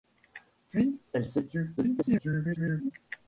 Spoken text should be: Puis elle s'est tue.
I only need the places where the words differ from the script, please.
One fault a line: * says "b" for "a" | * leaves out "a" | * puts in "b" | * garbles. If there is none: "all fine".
* garbles